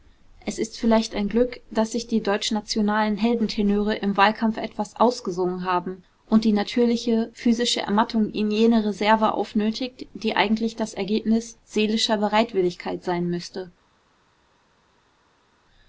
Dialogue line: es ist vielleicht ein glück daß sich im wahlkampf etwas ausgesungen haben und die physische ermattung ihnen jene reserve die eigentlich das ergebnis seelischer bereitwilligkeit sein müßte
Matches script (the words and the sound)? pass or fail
fail